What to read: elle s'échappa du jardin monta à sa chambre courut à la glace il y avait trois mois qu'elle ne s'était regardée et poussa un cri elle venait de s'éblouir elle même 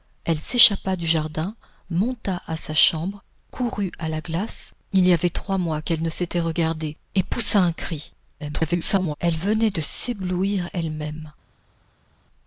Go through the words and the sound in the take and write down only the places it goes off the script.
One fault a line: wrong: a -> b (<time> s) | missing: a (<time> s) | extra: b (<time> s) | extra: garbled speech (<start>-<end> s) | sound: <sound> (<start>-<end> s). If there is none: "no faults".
extra: garbled speech (8.4-9.2 s)